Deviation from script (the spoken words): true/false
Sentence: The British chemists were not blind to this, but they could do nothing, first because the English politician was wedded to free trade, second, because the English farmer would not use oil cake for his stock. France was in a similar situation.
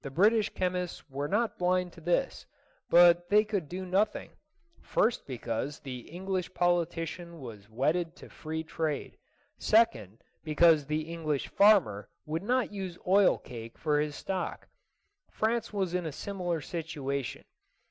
false